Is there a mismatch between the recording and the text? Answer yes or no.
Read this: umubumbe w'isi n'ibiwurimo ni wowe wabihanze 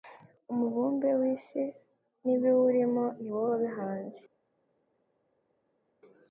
no